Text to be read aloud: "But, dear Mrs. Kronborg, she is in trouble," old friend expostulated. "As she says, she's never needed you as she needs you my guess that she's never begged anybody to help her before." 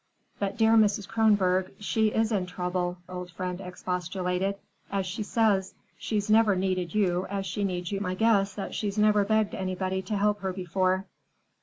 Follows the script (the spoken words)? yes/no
yes